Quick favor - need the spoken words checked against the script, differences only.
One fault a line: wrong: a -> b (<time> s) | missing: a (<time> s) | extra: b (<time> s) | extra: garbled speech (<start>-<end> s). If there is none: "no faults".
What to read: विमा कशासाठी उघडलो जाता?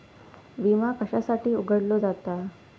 no faults